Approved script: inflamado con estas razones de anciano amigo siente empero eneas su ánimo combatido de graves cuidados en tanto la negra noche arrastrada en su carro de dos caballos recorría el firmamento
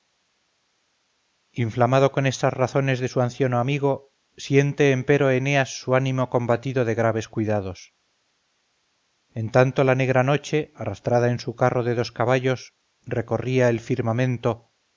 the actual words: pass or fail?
fail